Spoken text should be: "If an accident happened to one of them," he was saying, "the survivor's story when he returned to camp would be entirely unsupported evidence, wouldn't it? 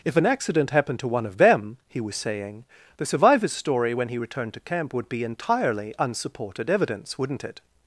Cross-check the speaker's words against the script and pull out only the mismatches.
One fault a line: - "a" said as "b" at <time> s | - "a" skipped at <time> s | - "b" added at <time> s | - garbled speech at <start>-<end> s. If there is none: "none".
none